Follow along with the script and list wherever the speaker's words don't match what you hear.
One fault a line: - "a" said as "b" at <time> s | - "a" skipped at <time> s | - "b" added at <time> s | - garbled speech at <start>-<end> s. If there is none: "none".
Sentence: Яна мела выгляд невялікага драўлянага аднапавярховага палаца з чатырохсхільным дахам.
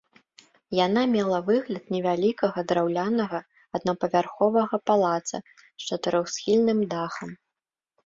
none